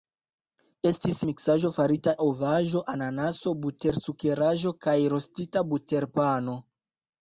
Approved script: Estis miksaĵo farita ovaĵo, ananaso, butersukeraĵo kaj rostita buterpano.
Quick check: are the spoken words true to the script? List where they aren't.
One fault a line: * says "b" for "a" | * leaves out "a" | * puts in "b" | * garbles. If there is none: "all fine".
all fine